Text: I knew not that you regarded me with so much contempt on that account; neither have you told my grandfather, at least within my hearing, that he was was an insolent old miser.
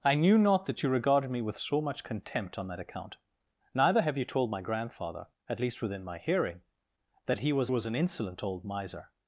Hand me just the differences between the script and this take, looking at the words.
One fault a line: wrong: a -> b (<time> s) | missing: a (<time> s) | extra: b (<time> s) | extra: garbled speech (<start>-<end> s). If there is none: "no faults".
no faults